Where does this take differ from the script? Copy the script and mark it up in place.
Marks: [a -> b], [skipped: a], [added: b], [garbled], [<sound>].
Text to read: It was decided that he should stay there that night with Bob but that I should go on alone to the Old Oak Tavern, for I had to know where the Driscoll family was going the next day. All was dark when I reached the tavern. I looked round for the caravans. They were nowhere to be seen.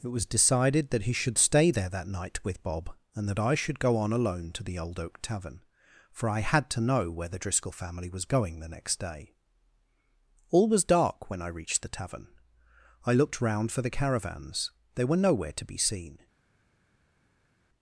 It was decided that he should stay there that night with Bob [but -> and] that I should go on alone to the Old Oak Tavern, for I had to know where the Driscoll family was going the next day. All was dark when I reached the tavern. I looked round for the caravans. They were nowhere to be seen.